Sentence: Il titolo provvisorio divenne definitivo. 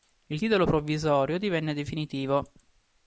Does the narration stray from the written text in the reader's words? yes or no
no